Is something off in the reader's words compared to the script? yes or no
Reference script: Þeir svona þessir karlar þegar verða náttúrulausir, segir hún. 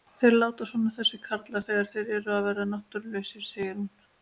yes